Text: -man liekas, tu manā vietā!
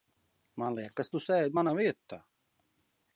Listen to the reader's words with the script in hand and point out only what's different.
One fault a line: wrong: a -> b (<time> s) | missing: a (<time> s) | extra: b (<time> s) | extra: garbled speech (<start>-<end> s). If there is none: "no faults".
extra: sēdi (1.2 s)